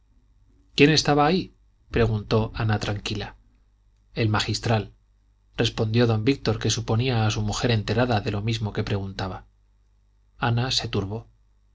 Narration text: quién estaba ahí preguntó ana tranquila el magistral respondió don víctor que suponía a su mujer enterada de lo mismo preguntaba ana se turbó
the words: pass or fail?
fail